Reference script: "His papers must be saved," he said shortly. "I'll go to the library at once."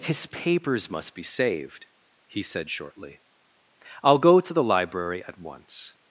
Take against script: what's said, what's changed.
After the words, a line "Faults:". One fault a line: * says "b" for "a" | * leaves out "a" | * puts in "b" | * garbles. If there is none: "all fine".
"His papers must be saved," he said shortly. "I'll go to the library at once."
Faults:
all fine